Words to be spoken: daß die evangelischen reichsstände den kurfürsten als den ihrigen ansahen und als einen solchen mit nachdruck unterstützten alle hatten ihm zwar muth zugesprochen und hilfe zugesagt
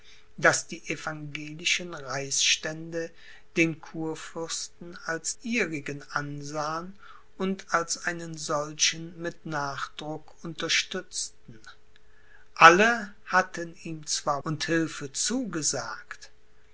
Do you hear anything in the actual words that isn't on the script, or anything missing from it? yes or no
yes